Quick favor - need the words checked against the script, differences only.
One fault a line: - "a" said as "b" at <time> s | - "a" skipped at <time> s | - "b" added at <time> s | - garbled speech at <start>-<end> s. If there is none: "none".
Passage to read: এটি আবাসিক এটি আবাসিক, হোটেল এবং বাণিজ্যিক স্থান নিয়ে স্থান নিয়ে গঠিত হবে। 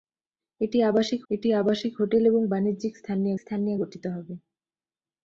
none